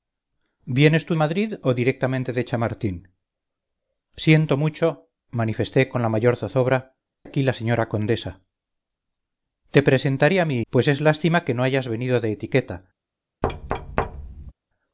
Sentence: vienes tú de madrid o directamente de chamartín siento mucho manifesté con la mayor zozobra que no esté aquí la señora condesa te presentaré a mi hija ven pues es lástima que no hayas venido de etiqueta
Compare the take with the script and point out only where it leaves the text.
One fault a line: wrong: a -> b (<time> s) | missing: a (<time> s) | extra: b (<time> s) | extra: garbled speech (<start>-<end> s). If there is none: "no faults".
missing: de (1.1 s)
missing: que no esté (6.9 s)
missing: hija ven (10.6 s)